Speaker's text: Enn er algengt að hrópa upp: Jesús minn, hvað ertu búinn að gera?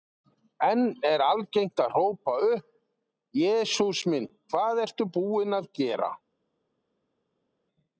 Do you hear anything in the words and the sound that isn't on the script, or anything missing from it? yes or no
no